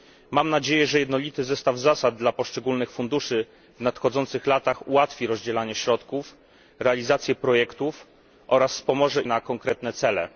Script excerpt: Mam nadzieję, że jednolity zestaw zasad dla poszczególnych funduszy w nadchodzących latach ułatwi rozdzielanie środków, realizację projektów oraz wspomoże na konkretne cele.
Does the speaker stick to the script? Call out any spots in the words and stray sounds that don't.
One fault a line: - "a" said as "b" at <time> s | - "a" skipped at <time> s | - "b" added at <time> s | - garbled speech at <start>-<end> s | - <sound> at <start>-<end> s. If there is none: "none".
none